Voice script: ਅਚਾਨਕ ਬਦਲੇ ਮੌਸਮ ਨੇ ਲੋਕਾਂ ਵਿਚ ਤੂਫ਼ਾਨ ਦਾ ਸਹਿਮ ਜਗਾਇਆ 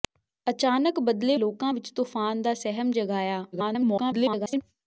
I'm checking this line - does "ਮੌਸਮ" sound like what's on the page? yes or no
no